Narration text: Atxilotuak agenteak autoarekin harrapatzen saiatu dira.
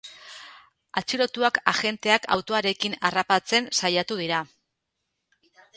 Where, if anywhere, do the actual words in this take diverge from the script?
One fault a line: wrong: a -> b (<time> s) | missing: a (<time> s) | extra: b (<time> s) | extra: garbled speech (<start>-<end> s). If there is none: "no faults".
no faults